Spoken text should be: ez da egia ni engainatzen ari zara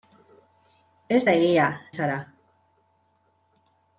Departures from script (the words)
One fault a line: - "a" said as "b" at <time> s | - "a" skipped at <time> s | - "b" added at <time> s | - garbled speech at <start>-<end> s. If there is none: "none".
- "ni engainatzen ari" skipped at 1.6 s